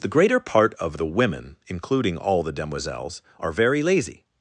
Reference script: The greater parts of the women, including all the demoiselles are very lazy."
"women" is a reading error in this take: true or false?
false